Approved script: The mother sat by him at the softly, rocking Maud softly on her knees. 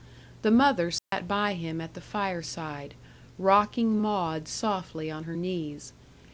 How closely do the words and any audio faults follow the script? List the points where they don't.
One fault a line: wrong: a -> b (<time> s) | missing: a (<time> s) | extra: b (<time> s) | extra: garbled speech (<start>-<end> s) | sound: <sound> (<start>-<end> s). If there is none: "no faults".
sound: dropout (1.0-1.1 s)
wrong: softly -> fireside (2.0 s)